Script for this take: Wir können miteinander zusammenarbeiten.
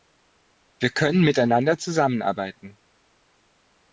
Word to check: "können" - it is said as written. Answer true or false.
true